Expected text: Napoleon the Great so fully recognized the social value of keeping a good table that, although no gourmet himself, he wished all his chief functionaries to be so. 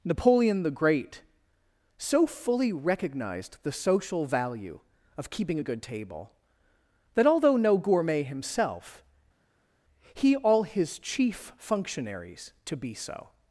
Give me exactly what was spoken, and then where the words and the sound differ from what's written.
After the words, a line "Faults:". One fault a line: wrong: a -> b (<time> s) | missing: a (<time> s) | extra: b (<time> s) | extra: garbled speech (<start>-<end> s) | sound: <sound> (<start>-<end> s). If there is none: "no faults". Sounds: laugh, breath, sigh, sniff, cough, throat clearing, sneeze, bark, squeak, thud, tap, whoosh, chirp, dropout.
Napoleon the Great so fully recognized the social value of keeping a good table that, although no gourmet himself, he all his chief functionaries to be so.
Faults:
missing: wished (10.4 s)